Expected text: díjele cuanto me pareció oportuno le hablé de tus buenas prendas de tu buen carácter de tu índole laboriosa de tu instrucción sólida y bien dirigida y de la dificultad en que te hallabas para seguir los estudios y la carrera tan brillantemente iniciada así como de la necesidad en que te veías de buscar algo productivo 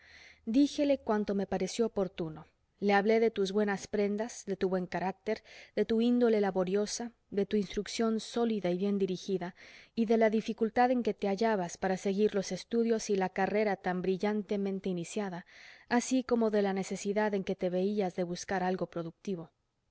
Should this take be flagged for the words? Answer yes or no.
no